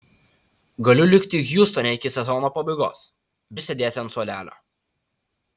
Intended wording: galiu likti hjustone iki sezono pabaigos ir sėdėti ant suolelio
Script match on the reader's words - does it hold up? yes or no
yes